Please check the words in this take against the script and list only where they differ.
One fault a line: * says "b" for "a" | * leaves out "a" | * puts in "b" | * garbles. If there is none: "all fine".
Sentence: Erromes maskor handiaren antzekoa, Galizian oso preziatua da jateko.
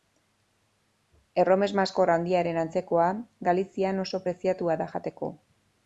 all fine